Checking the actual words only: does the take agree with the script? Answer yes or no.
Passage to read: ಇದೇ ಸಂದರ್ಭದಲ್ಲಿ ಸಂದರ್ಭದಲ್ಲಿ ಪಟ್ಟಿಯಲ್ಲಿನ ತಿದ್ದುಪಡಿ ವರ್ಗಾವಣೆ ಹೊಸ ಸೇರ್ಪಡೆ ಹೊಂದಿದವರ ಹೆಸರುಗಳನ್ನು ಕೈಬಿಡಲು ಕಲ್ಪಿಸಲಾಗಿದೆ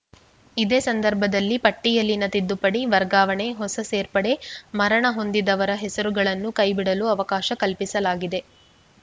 no